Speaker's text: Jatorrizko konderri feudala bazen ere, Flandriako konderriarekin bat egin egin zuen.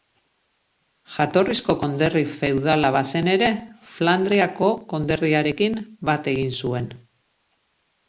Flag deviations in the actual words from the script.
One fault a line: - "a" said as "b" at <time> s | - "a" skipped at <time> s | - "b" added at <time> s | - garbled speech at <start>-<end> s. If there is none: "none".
- "egin" skipped at 6.5 s